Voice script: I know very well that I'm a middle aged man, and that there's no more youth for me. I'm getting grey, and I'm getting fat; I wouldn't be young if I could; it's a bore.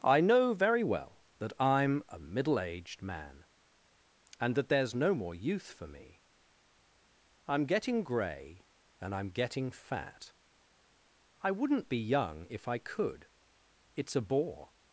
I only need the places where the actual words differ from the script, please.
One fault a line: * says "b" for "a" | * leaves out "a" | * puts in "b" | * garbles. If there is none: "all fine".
all fine